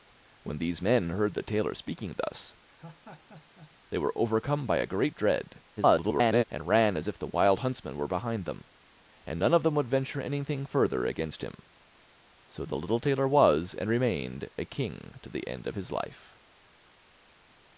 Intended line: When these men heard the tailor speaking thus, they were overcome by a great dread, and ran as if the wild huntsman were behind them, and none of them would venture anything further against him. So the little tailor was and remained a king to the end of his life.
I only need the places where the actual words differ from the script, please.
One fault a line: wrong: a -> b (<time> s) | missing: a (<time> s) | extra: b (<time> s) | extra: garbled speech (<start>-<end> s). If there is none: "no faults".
extra: garbled speech (5.8-6.4 s)